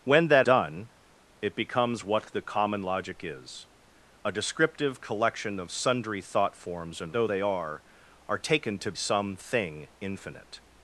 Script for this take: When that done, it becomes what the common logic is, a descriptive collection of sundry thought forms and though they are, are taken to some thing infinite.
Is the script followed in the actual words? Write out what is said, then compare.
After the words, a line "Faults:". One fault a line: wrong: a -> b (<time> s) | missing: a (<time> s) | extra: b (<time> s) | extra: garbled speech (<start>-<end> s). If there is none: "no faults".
When that done, it becomes what the common logic is, a descriptive collection of sundry thought forms and though they are, are taken to some thing infinite.
Faults:
no faults